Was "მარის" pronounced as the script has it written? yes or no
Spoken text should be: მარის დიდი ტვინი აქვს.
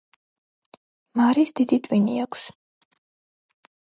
yes